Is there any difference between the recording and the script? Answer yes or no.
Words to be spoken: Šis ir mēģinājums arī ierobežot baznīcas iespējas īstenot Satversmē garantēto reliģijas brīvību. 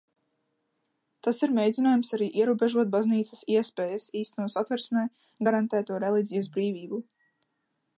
yes